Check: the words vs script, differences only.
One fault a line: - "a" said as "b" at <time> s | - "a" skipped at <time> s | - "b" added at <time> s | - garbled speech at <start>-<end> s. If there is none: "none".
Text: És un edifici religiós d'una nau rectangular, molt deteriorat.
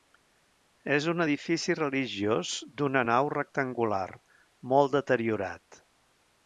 none